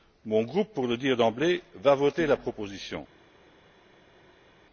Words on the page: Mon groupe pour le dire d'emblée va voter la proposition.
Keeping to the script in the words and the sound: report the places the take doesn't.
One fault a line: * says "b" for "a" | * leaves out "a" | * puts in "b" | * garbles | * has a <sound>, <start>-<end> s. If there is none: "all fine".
all fine